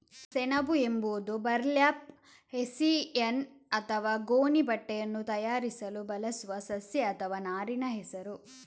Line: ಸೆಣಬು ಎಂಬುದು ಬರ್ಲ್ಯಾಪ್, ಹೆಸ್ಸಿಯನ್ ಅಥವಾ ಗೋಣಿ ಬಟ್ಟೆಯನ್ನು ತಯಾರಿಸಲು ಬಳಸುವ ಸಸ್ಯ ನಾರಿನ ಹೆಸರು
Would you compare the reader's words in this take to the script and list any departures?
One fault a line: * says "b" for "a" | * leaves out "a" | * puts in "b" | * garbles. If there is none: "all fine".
* puts in "ಅಥವಾ"